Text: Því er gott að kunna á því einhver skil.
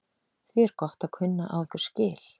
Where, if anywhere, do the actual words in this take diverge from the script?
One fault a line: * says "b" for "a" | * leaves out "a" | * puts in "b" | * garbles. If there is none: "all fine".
* leaves out "því"